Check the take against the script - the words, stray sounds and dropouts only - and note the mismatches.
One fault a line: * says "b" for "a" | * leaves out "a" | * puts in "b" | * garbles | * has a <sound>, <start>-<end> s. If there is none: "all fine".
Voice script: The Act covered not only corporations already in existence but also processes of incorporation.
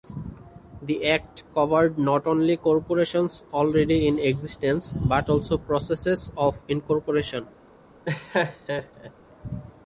* has a laugh, 8.0-9.1 s